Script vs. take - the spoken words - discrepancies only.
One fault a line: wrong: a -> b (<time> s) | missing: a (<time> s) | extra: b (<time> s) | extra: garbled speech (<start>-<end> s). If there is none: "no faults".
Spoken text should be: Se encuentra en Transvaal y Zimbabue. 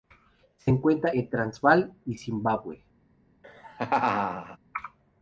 no faults